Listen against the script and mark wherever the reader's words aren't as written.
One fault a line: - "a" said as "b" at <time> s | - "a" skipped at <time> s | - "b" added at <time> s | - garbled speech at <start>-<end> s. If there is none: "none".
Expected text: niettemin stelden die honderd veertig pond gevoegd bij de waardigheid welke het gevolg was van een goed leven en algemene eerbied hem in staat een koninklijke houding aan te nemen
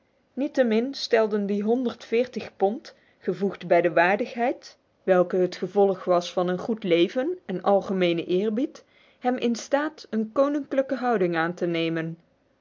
none